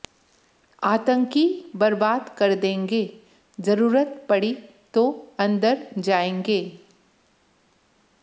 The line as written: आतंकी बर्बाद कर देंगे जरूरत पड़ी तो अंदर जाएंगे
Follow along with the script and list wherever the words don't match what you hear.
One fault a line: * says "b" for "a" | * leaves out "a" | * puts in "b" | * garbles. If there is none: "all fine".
all fine